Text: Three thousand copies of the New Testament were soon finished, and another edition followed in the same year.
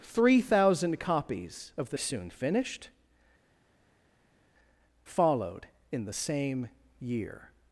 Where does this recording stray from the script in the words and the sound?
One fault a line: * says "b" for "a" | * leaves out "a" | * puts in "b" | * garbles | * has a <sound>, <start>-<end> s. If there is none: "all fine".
* leaves out "New Testament were"
* leaves out "and another edition"